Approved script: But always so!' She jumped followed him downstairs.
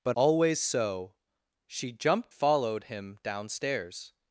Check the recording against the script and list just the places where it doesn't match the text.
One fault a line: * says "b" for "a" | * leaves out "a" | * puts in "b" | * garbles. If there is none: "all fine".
all fine